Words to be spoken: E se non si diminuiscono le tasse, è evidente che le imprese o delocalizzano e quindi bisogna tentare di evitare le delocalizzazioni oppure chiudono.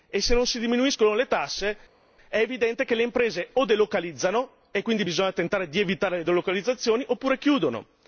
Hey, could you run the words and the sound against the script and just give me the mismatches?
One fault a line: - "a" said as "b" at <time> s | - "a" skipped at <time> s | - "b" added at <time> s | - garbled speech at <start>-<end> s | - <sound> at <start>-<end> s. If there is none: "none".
none